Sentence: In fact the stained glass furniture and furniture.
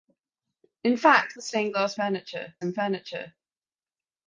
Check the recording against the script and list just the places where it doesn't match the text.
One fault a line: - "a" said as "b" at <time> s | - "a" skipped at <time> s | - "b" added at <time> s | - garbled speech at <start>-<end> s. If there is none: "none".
none